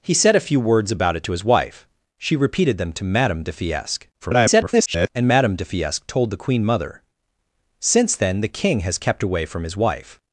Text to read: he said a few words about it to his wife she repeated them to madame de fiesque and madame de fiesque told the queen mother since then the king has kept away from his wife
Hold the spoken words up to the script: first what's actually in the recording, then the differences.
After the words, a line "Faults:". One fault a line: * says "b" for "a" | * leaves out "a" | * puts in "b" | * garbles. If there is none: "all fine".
he said a few words about it to his wife she repeated them to madame de fiesque [garbled] and madame de fiesque told the queen mother since then the king has kept away from his wife
Faults:
* garbles